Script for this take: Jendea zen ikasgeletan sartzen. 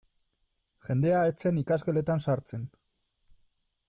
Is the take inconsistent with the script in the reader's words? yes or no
yes